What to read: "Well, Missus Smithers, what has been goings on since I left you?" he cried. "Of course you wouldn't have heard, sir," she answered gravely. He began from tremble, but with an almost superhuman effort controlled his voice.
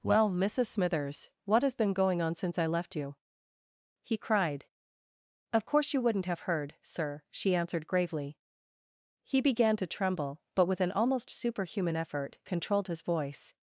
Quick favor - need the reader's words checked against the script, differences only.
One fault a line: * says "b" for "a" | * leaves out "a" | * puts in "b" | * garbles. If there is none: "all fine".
* says "going" for "goings"
* says "to" for "from"